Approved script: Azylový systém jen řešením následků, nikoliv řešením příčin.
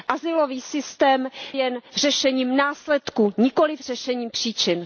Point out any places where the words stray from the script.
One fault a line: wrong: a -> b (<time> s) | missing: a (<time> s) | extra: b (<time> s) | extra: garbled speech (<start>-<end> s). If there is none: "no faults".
no faults